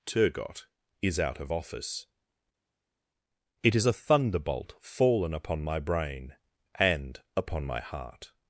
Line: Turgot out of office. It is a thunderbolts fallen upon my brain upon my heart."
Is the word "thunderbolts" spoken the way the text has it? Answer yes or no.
no